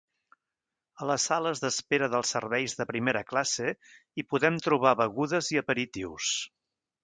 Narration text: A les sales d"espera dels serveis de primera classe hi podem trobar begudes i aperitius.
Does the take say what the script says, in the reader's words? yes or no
yes